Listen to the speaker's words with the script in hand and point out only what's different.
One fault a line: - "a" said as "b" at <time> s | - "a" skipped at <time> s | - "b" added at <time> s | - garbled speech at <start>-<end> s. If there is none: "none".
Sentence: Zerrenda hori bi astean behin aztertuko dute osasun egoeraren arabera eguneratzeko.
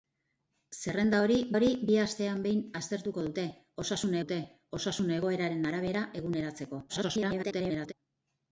- "hori" added at 1.6 s
- "dute osasun" added at 4.2 s
- garbled speech at 6.9-7.9 s